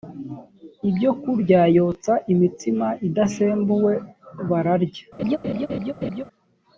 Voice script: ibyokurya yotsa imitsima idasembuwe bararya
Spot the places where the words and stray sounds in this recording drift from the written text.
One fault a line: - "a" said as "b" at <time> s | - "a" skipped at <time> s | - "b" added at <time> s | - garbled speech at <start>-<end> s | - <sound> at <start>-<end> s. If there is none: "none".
- laugh at 5.2-6.2 s